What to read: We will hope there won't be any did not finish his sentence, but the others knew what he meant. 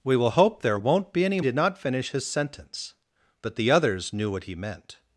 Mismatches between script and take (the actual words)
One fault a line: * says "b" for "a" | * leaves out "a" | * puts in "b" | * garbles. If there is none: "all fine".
all fine